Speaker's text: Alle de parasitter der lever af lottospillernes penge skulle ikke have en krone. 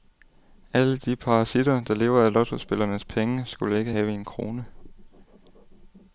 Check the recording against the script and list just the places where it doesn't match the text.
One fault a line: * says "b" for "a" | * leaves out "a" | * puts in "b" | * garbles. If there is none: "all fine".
all fine